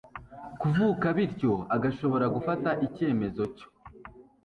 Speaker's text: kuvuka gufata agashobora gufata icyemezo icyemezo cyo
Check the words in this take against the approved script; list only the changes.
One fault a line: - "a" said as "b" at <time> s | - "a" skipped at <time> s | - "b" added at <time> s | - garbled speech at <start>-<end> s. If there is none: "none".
- "gufata" said as "bityo" at 1.2 s
- "icyemezo" skipped at 3.4 s